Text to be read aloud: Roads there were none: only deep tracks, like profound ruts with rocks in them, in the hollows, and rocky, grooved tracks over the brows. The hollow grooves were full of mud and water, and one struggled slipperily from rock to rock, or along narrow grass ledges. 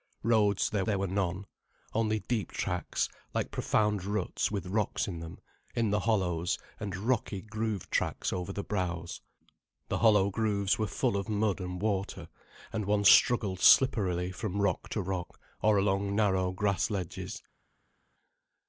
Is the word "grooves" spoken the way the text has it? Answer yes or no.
yes